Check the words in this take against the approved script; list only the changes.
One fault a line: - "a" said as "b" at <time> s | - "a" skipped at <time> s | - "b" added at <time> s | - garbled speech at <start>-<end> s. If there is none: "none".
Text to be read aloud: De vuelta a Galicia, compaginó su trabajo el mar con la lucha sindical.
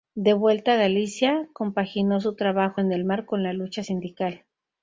- "en" added at 2.8 s